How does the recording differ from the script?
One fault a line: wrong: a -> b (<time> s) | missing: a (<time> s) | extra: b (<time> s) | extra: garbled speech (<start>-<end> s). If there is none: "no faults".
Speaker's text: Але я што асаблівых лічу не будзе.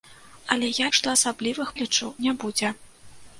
no faults